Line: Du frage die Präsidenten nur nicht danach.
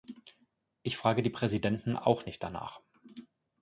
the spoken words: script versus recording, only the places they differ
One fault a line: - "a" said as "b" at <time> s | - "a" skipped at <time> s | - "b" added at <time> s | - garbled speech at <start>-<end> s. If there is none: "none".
- "Du" said as "Ich" at 0.8 s
- "nur" said as "auch" at 1.9 s